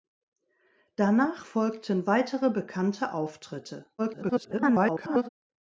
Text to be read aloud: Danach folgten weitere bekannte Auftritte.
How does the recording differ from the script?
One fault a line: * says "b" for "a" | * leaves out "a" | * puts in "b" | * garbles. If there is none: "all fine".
* garbles